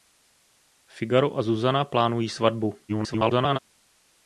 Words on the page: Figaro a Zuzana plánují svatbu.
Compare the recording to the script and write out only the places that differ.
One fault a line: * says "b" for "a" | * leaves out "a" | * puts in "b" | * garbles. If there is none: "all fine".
* garbles